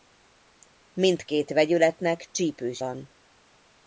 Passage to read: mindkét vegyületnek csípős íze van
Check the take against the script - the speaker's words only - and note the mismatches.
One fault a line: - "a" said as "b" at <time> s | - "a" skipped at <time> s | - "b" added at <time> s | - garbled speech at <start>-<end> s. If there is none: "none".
- "íze" skipped at 2.8 s